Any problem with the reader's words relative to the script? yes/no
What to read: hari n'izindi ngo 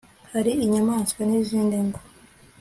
yes